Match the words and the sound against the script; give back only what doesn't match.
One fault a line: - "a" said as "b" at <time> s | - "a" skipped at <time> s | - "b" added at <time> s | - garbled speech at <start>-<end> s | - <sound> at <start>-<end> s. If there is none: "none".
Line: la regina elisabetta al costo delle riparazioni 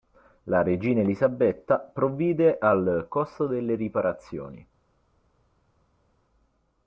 - "provvide" added at 1.8 s